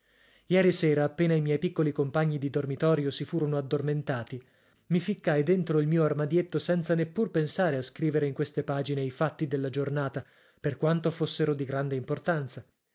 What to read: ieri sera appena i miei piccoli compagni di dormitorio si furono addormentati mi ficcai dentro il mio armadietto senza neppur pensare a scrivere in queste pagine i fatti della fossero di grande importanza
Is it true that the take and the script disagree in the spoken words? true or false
true